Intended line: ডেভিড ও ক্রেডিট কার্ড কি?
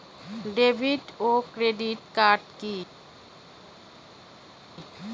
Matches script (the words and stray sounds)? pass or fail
pass